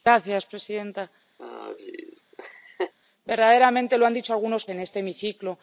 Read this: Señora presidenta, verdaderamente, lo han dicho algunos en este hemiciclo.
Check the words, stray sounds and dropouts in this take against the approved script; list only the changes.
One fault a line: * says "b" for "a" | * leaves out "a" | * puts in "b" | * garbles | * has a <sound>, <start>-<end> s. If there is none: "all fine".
* has a laugh, 1.4-2.9 s